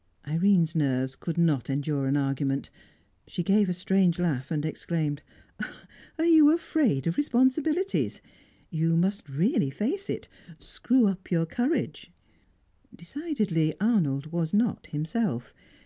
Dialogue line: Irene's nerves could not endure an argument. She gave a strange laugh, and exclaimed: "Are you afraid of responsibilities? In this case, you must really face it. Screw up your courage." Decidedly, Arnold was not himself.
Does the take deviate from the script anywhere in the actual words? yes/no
yes